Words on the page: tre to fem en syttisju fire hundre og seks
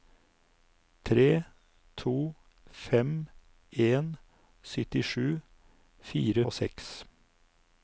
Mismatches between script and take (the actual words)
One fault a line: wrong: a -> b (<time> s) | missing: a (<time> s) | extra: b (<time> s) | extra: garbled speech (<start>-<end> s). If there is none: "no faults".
missing: hundre (6.4 s)